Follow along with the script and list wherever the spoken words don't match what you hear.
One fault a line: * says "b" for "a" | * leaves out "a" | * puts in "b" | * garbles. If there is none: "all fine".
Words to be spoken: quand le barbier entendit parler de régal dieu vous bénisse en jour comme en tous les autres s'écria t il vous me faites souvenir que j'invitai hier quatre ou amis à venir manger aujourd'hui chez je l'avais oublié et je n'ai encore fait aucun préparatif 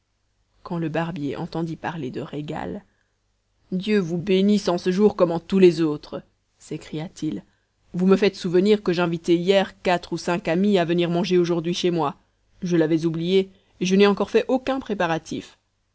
* puts in "ce"
* puts in "cinq"
* puts in "moi"